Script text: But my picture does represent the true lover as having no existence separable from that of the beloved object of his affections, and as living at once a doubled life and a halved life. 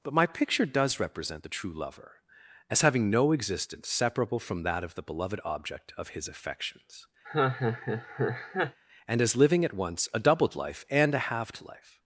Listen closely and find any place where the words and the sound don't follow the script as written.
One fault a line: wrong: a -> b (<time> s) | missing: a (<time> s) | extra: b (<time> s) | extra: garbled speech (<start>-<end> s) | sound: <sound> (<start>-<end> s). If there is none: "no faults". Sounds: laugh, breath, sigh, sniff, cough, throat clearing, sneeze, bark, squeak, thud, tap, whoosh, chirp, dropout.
sound: laugh (7.2-8.8 s)